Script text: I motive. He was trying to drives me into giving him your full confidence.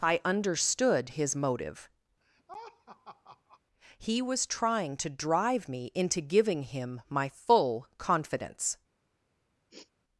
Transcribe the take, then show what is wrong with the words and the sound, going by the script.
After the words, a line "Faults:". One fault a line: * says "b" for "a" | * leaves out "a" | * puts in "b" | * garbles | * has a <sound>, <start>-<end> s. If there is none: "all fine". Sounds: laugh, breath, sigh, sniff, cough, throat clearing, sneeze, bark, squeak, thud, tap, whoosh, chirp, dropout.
I understood his motive. He was trying to drive me into giving him my full confidence.
Faults:
* puts in "understood his"
* has a laugh, 2.2-3.6 s
* says "drive" for "drives"
* says "my" for "your"
* has a sniff, 9.7-9.9 s